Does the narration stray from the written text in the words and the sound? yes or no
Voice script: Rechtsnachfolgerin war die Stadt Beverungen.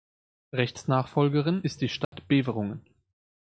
yes